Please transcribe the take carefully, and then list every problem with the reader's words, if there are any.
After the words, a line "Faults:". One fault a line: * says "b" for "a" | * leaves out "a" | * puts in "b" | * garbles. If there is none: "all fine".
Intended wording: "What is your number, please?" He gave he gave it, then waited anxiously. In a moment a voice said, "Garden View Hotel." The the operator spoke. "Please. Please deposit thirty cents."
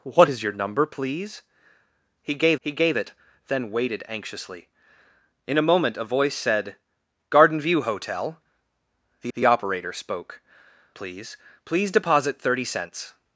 "What is your number, please?" He gave he gave it, then waited anxiously. In a moment a voice said, "Garden View Hotel." The the operator spoke. "Please. Please deposit thirty cents."
Faults:
all fine